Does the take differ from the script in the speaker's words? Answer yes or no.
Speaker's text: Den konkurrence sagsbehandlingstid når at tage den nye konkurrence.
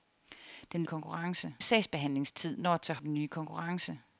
no